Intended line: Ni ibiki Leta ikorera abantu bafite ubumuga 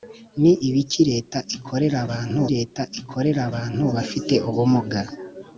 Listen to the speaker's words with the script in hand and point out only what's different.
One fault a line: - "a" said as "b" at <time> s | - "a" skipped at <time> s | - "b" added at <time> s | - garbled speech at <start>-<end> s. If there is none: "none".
- "Leta ikorera abantu" added at 2.5 s